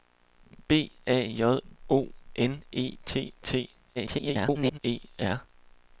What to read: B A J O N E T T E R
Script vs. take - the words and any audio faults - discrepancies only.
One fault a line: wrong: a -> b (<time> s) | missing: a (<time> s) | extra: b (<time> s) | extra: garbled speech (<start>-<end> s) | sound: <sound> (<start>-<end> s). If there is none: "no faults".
extra: garbled speech (4.0-4.8 s)